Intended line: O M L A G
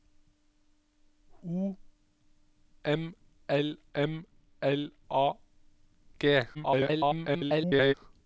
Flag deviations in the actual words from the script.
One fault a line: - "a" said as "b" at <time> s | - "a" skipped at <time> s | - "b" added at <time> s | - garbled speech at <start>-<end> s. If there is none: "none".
- "M L" added at 3.9 s
- garbled speech at 6.5-7.9 s